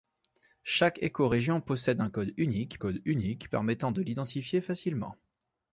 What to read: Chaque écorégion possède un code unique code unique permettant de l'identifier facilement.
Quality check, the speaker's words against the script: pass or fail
pass